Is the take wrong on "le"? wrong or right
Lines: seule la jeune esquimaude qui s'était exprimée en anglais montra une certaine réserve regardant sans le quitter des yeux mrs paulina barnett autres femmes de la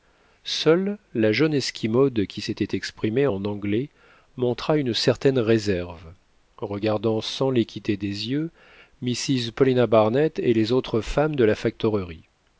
wrong